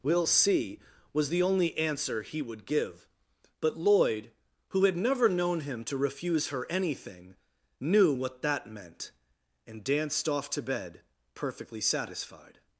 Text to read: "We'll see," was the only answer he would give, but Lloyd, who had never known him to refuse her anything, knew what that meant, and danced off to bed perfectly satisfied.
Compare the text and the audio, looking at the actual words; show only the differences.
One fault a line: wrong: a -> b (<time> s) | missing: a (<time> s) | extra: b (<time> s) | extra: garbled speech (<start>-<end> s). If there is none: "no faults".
no faults